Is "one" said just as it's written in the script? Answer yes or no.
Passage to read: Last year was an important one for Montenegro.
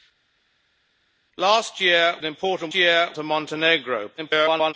no